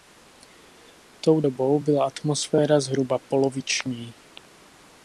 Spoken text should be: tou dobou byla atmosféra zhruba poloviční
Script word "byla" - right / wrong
right